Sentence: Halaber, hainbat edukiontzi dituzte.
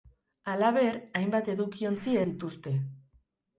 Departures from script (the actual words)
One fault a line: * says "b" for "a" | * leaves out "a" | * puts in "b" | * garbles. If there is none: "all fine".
all fine